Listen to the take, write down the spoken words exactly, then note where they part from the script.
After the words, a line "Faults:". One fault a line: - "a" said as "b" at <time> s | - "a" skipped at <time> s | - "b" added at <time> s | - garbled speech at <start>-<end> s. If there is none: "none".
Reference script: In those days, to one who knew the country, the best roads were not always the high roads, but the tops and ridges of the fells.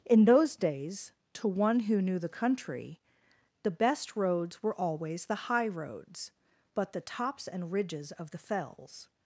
In those days, to one who knew the country, the best roads were always the high roads, but the tops and ridges of the fells.
Faults:
- "not" skipped at 4.8 s